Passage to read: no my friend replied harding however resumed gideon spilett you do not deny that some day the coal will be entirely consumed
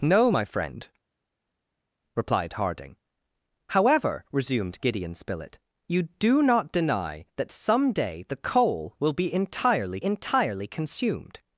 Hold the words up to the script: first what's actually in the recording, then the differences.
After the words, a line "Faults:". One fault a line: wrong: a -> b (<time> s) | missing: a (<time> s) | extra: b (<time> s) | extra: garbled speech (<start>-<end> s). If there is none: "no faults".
no my friend replied harding however resumed gideon spilett you do not deny that some day the coal will be entirely entirely consumed
Faults:
extra: entirely (10.0 s)